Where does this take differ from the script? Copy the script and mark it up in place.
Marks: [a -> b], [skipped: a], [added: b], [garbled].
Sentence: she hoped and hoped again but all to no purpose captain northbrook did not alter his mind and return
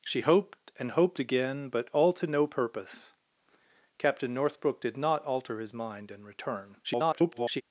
she hoped and hoped again but all to no purpose captain northbrook did not alter his mind and return [garbled]